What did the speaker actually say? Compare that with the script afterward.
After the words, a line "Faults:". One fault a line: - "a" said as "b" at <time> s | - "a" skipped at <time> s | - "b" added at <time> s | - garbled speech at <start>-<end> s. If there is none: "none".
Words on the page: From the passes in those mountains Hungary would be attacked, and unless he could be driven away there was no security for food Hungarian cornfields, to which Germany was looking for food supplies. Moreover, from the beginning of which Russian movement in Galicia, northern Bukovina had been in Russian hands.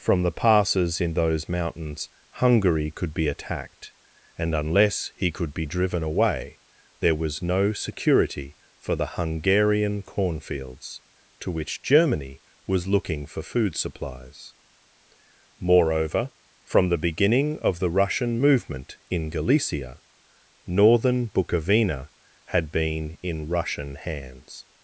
From the passes in those mountains Hungary could be attacked, and unless he could be driven away there was no security for the Hungarian cornfields, to which Germany was looking for food supplies. Moreover, from the beginning of the Russian movement in Galicia, northern Bukovina had been in Russian hands.
Faults:
- "would" said as "could" at 2.9 s
- "food" said as "the" at 8.9 s
- "which" said as "the" at 17.8 s